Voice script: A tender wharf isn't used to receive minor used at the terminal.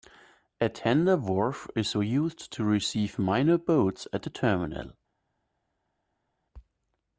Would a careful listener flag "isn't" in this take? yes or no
yes